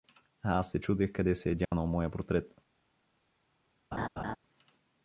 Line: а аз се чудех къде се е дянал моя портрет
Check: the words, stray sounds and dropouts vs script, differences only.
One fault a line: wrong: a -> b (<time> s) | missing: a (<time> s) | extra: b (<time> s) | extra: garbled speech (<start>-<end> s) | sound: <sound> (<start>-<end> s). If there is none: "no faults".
sound: dropout (1.6-1.7 s)
sound: laugh (3.9-4.4 s)